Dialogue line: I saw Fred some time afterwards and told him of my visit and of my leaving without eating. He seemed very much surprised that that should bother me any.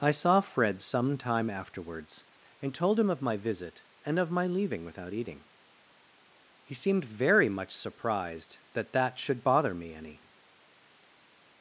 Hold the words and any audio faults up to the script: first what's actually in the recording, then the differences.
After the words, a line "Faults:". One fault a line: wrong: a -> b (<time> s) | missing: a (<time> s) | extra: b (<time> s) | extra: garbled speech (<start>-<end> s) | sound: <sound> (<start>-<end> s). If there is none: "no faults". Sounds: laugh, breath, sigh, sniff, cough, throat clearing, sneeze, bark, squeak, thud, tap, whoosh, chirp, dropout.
I saw Fred some time afterwards and told him of my visit and of my leaving without eating. He seemed very much surprised that that should bother me any.
Faults:
no faults